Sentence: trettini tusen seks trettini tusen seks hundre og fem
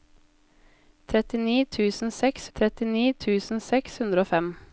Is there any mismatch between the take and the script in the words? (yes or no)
no